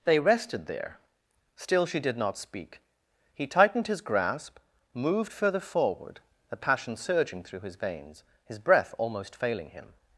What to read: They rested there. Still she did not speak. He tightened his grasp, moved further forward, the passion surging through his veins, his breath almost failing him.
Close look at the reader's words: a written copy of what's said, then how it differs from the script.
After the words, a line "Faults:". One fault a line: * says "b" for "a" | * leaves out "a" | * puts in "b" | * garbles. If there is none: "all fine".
They rested there. Still she did not speak. He tightened his grasp, moved further forward, the passion surging through his veins, his breath almost failing him.
Faults:
all fine